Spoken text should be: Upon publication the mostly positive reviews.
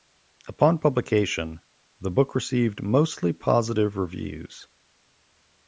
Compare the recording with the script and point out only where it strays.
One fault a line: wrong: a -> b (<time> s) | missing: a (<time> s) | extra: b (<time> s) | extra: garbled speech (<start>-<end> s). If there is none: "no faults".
extra: book received (2.1 s)